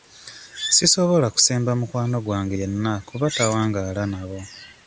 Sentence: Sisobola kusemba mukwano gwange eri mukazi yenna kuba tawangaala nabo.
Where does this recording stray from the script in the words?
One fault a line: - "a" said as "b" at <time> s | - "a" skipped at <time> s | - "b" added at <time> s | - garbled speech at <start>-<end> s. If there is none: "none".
- "eri mukazi" skipped at 2.5 s